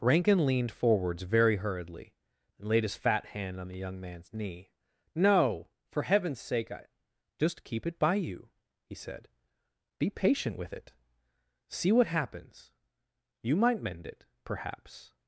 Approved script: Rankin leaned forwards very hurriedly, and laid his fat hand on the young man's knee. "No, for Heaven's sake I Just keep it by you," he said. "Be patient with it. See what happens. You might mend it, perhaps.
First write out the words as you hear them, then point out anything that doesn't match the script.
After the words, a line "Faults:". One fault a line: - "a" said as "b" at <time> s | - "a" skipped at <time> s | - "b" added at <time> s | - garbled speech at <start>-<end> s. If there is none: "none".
Rankin leaned forwards very hurriedly, and laid his fat hand on the young man's knee. "No, for Heaven's sake I Just keep it by you," he said. "Be patient with it. See what happens. You might mend it, perhaps.
Faults:
none